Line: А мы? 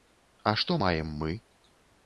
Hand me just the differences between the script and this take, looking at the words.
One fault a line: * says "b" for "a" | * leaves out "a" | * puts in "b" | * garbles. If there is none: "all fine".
* puts in "што маем"